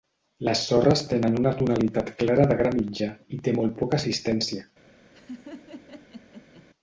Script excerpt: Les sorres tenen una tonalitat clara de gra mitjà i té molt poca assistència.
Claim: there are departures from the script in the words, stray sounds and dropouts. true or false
true